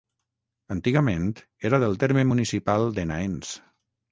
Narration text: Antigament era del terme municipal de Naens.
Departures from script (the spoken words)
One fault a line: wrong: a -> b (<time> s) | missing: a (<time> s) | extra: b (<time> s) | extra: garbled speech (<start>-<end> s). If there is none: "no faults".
no faults